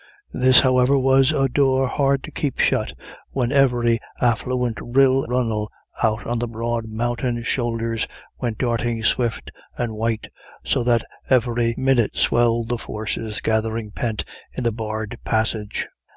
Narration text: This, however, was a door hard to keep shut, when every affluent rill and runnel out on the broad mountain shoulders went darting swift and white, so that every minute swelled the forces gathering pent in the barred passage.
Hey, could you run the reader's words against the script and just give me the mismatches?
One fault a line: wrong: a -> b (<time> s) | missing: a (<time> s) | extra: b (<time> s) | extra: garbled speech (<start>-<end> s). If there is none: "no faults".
missing: and (5.3 s)